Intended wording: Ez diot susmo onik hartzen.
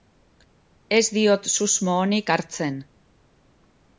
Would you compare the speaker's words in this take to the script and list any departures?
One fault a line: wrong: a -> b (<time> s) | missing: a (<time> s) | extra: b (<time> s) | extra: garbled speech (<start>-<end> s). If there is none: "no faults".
no faults